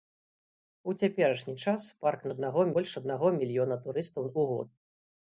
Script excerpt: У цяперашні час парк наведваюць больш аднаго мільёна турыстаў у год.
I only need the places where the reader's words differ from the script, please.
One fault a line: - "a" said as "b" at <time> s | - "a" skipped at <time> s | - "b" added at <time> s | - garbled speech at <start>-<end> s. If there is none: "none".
- "наведваюць" said as "аднаго" at 2.4 s